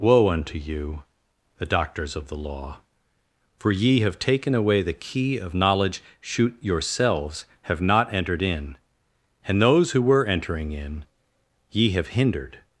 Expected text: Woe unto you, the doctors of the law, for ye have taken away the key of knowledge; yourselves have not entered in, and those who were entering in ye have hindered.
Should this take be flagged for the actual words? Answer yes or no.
yes